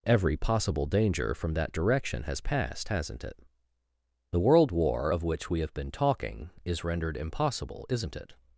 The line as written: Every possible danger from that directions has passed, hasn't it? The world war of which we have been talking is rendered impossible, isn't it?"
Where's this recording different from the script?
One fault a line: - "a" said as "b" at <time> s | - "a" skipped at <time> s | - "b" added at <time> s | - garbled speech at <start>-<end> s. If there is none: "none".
- "directions" said as "direction" at 1.7 s